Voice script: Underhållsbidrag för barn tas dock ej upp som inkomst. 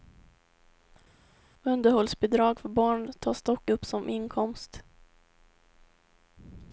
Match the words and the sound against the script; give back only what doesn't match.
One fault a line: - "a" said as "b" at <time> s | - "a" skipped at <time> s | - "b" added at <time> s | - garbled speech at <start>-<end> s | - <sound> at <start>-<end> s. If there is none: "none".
- "ej" skipped at 3.7 s